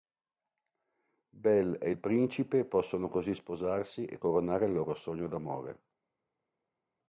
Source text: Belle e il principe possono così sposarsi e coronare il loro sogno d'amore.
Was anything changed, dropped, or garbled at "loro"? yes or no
no